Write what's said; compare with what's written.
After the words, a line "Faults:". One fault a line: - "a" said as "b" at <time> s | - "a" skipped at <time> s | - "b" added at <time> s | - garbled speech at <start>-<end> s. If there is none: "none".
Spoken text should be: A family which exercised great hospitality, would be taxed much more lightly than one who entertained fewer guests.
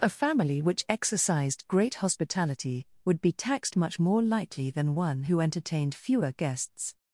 A family which exercised great hospitality, would be taxed much more lightly than one who entertained fewer guests.
Faults:
none